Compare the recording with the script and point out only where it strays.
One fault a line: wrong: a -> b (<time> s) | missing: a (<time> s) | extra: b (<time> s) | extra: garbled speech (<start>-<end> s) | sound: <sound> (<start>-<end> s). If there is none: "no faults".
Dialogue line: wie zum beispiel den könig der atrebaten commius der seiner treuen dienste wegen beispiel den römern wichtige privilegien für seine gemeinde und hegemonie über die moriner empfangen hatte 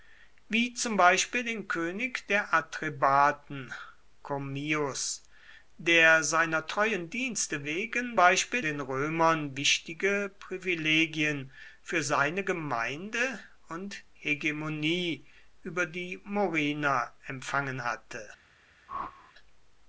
sound: whoosh (18.9-19.3 s)